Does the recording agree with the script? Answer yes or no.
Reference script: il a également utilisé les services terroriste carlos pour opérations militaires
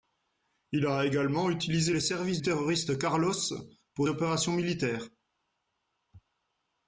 yes